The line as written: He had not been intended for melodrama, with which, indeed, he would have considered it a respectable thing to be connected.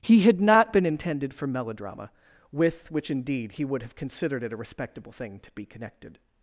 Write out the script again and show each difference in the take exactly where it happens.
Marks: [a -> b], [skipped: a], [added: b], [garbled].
He had not been intended for melodrama, with which, indeed, he would have considered it a respectable thing to be connected.